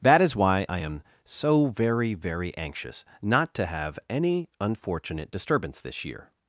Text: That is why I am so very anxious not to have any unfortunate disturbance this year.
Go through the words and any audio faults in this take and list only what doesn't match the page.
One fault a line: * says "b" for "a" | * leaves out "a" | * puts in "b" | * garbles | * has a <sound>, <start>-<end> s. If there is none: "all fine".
* puts in "very"